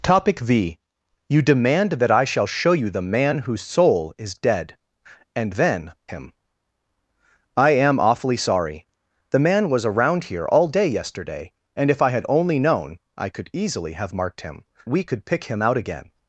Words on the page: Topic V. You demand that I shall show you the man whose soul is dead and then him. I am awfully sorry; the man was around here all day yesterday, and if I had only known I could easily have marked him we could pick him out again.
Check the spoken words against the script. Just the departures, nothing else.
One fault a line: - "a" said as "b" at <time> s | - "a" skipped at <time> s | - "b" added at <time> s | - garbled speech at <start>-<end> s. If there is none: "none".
none